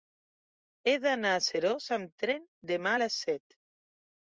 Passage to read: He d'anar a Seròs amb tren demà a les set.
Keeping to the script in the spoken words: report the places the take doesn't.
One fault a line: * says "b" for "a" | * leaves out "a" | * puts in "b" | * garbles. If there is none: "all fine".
all fine